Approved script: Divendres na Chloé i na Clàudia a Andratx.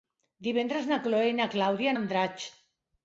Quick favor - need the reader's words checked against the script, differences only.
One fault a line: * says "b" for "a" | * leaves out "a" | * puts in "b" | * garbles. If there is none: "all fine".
all fine